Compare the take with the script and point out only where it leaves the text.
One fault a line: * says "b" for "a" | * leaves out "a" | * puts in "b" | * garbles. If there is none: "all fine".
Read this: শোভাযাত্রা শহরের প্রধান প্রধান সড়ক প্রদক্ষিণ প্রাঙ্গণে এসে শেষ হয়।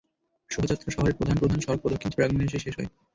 all fine